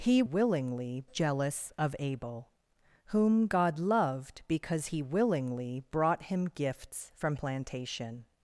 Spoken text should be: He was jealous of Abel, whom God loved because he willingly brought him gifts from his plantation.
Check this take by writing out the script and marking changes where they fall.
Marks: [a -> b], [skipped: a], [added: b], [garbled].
He [was -> willingly] jealous of Abel, whom God loved because he willingly brought him gifts from [skipped: his] plantation.